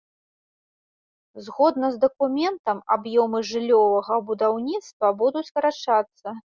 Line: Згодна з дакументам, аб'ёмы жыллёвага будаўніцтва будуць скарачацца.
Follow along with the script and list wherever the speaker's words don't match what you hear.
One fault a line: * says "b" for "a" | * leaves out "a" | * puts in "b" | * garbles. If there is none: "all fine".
all fine